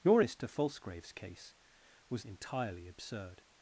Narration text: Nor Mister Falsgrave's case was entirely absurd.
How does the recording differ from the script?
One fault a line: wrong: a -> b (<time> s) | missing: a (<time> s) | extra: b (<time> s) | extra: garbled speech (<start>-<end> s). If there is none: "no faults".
no faults